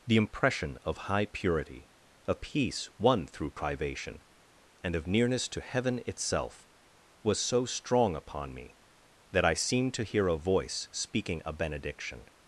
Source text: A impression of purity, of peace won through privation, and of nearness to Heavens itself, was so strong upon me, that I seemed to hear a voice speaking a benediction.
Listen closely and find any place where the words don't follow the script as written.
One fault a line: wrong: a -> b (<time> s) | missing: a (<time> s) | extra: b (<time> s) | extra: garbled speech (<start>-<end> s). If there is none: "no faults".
wrong: A -> The (0.1 s)
extra: high (1.0 s)
wrong: Heavens -> Heaven (5.6 s)